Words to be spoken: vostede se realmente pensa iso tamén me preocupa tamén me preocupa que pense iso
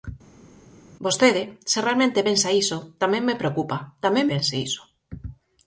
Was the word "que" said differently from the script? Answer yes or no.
yes